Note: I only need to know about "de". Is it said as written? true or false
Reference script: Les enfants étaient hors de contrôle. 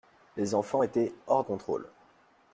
false